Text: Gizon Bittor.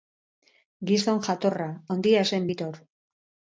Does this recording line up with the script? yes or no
no